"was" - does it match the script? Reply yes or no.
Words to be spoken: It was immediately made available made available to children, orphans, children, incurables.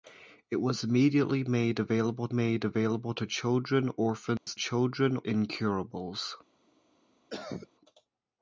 yes